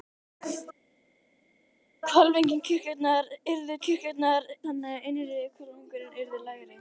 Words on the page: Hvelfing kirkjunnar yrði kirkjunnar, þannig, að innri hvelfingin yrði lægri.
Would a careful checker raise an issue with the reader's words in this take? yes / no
no